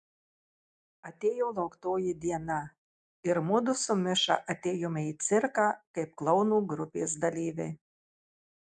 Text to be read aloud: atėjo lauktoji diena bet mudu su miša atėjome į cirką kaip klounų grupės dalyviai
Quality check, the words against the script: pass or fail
fail